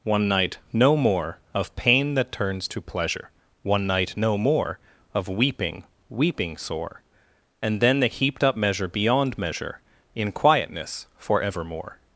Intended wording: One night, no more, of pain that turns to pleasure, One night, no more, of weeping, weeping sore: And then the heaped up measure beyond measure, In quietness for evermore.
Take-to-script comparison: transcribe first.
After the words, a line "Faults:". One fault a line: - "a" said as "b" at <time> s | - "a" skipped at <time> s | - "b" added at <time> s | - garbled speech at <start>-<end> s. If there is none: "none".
One night, no more, of pain that turns to pleasure, One night, no more, of weeping, weeping sore: And then the heaped up measure beyond measure, In quietness for evermore.
Faults:
none